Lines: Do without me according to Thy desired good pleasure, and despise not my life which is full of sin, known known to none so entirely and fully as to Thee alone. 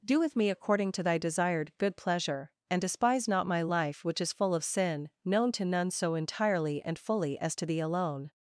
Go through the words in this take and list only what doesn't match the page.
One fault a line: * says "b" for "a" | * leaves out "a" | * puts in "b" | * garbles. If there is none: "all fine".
* says "with" for "without"
* leaves out "known"